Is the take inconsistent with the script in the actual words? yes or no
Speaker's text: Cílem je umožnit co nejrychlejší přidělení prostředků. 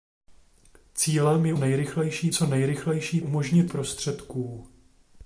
yes